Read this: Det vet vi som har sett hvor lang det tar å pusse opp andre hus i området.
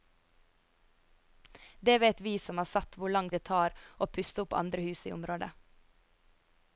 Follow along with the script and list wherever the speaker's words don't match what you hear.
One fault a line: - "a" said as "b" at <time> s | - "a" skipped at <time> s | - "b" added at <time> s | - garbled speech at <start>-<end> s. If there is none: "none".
none